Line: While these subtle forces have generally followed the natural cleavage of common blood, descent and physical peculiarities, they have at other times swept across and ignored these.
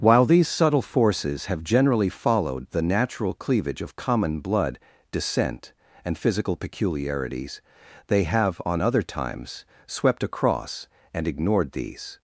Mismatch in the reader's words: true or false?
true